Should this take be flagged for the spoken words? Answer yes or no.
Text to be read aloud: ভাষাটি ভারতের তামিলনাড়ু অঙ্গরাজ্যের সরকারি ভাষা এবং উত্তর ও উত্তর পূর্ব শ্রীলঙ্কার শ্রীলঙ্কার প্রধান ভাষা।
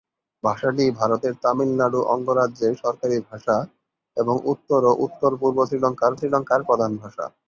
no